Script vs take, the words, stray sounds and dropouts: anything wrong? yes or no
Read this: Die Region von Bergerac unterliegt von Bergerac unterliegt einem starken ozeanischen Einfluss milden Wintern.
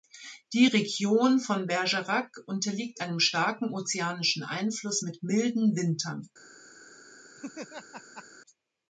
yes